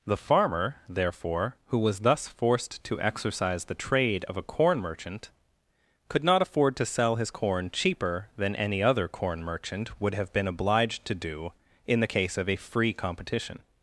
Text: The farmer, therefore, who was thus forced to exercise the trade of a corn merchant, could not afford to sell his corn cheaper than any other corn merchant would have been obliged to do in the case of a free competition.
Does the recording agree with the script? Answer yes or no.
yes